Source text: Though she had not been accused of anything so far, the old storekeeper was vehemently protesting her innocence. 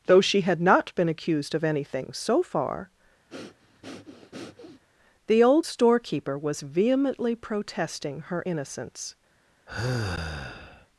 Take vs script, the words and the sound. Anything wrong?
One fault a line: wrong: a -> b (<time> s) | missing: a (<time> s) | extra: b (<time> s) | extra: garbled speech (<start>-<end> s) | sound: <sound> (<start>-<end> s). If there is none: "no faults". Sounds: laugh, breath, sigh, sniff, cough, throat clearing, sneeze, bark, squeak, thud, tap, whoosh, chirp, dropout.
sound: breath (3.3-4.8 s)
sound: sigh (9.7-10.9 s)